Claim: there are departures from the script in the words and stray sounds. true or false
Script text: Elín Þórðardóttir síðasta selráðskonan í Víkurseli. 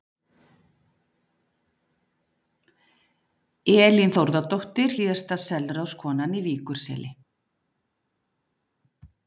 false